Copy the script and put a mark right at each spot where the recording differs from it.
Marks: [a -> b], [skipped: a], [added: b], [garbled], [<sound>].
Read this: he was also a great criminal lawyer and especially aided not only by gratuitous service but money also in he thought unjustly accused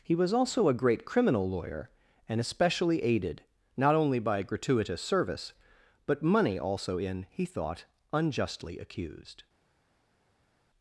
he was also a great criminal lawyer and especially aided not only by gratuitous service but money also in he thought unjustly accused